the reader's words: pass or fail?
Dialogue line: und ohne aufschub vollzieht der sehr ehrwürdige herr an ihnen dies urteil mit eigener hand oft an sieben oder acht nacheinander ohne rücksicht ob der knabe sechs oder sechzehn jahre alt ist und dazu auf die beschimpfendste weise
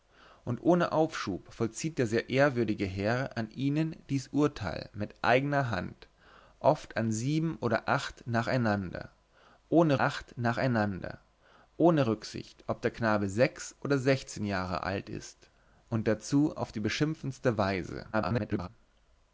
fail